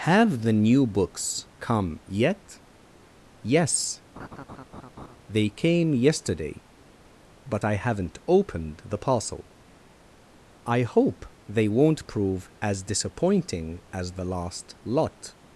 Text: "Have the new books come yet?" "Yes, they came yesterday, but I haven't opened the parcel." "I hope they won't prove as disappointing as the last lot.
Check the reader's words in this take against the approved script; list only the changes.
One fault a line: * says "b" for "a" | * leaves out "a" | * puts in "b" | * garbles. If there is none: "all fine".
all fine